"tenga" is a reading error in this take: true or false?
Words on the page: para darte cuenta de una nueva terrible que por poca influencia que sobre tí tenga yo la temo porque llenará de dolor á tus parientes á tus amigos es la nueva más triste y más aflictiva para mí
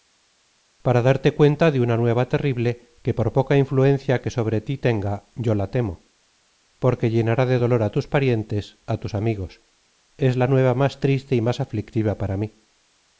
false